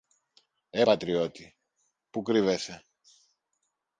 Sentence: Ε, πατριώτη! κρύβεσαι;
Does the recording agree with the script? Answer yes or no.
no